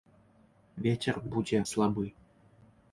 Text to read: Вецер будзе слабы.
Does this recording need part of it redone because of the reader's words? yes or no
no